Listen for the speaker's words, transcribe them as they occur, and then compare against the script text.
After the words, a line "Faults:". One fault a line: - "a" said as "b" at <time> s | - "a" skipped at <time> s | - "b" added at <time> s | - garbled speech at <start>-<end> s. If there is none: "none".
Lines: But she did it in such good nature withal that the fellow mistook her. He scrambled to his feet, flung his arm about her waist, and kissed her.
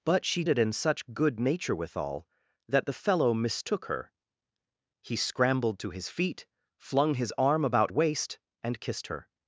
But she it in such good nature withal that the fellow mistook her. He scrambled to his feet, flung his arm about waist, and kissed her.
Faults:
- "did" skipped at 0.4 s
- "her" skipped at 7.9 s